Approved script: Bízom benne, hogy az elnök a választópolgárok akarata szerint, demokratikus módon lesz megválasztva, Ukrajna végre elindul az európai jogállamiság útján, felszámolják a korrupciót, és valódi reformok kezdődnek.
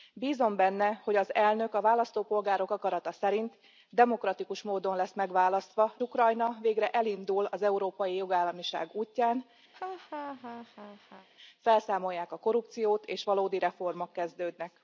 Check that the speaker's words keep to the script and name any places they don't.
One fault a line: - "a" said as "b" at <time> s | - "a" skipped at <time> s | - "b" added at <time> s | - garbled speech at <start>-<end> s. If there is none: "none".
none